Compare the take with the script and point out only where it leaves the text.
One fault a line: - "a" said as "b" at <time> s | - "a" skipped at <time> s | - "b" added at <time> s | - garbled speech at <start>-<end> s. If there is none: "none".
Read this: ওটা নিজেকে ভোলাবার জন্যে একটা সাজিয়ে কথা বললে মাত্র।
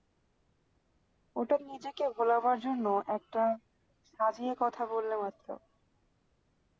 none